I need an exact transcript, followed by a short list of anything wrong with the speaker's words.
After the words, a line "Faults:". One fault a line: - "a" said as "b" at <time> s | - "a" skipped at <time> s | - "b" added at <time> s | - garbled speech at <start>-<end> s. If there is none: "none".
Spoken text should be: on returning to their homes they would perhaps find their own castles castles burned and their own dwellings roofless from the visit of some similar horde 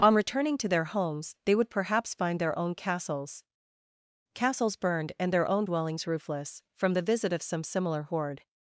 on returning to their homes they would perhaps find their own castles castles burned and their own dwellings roofless from the visit of some similar horde
Faults:
none